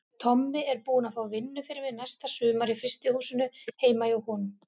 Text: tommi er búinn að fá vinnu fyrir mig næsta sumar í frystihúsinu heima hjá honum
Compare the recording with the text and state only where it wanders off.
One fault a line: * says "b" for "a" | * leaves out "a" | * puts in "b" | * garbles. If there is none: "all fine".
all fine